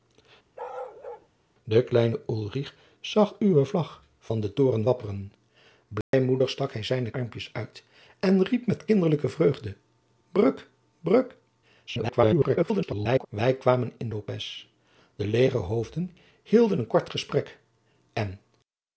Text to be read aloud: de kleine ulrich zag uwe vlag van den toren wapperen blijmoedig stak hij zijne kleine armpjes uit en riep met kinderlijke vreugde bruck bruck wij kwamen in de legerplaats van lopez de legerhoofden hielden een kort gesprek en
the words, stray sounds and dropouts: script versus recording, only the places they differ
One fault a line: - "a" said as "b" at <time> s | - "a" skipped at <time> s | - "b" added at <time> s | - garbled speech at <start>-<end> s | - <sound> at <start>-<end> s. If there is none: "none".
- bark at 0.6-1.3 s
- dropout at 6.0-6.1 s
- "kleine" skipped at 7.1 s
- garbled speech at 11.9-13.3 s
- "de legerplaats van" skipped at 14.1 s